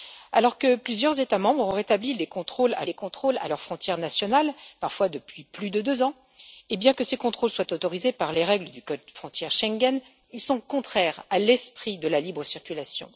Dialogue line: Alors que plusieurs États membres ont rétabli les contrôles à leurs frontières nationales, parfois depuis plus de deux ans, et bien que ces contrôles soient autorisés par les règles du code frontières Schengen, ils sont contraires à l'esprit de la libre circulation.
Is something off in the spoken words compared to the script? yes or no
yes